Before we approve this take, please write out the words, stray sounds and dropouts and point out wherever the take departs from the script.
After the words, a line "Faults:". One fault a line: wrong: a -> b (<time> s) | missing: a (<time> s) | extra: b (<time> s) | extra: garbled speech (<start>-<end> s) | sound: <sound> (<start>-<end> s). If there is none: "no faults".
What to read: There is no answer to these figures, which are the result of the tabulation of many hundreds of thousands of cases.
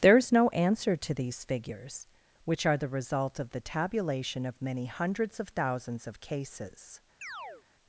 There is no answer to these figures, which are the result of the tabulation of many hundreds of thousands of cases.
Faults:
sound: chirp (7.2-7.6 s)